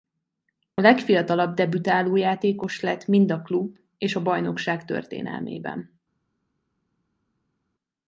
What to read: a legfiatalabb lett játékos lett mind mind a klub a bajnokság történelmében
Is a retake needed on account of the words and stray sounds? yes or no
yes